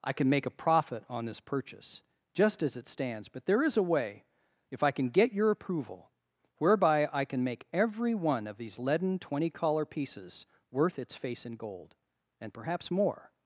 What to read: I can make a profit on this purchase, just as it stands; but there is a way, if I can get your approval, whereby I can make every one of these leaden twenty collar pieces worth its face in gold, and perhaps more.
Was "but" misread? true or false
false